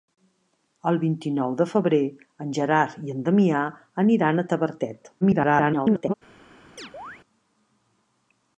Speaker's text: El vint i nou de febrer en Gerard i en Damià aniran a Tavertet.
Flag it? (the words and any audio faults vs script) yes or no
yes